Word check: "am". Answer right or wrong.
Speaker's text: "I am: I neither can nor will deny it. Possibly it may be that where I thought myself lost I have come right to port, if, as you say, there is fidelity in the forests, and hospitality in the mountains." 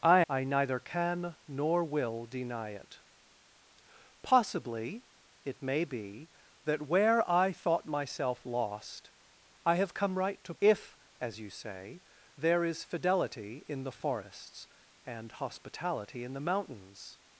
wrong